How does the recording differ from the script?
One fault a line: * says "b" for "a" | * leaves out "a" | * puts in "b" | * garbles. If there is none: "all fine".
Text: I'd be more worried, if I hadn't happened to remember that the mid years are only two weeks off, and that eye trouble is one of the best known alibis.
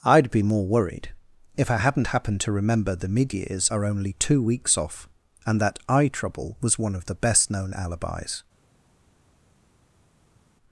* leaves out "that"
* says "was" for "is"